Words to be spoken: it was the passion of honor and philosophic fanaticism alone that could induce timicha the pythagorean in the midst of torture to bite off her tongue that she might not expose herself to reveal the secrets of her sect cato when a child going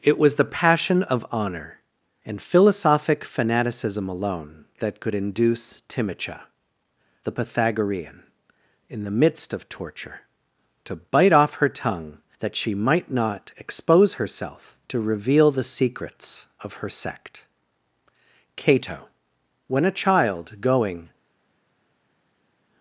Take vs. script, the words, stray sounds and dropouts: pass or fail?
pass